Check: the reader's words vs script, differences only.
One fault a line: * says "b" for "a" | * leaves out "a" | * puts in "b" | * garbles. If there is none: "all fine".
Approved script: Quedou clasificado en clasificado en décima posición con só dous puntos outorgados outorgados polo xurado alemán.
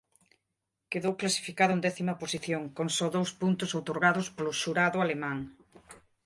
* leaves out "clasificado en"
* leaves out "outorgados"